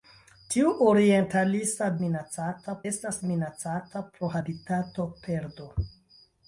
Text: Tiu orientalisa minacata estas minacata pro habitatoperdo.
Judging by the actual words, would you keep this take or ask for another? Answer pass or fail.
pass